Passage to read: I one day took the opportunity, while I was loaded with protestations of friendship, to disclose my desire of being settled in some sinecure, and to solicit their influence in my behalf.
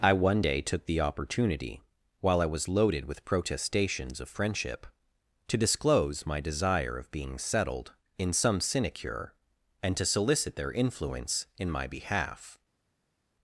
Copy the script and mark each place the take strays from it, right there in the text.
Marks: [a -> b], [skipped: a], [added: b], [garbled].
I one day took the opportunity, while I was loaded with protestations of friendship, to disclose my desire of being settled in some sinecure, and to solicit their influence in my behalf.